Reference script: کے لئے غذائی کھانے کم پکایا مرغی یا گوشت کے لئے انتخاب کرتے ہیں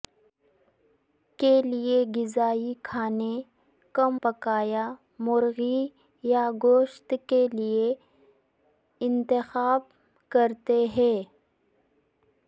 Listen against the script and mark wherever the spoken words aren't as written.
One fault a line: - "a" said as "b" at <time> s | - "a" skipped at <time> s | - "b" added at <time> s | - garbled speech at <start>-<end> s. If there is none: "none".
none